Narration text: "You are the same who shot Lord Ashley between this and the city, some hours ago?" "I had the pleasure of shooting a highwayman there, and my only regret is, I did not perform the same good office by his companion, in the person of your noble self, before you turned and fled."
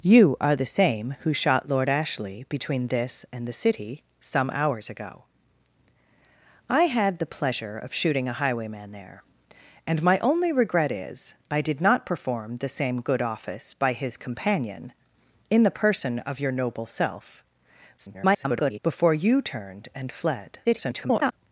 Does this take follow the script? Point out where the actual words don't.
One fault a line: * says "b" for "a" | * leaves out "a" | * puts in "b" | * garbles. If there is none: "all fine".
* garbles
* garbles